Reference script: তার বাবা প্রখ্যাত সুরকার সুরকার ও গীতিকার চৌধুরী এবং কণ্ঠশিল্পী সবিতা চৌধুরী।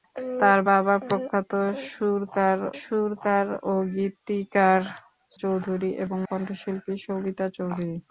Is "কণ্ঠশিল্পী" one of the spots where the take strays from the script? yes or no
no